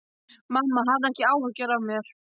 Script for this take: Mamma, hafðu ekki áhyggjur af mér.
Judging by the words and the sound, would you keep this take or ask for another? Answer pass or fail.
pass